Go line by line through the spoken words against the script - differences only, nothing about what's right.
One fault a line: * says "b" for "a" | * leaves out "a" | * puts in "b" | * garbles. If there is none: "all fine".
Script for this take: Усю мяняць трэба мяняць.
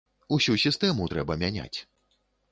* says "сістэму" for "мяняць"